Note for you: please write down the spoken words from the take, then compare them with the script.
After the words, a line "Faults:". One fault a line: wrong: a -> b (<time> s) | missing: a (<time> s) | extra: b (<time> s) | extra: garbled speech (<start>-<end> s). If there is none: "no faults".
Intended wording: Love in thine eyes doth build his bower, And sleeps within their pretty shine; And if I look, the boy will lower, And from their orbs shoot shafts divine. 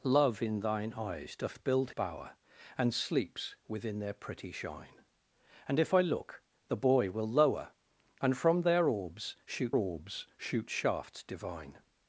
Love in thine eyes doth build bower, And sleeps within their pretty shine; And if I look, the boy will lower, And from their orbs shoot orbs shoot shafts divine.
Faults:
missing: his (1.9 s)
extra: orbs shoot (9.7 s)